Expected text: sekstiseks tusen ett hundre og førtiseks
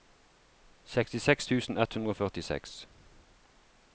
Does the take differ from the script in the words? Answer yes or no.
no